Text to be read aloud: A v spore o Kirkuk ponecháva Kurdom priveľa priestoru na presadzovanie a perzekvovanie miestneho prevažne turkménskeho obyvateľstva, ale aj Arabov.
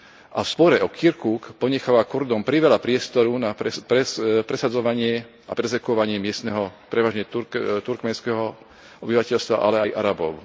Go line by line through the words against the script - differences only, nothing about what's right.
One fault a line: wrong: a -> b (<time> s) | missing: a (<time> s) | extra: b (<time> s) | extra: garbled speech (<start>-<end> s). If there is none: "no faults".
no faults